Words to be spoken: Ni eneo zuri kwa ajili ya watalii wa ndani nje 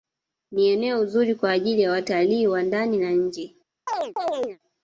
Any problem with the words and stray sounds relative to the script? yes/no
yes